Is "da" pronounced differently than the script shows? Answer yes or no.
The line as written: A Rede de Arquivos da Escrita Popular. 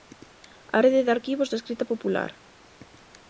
no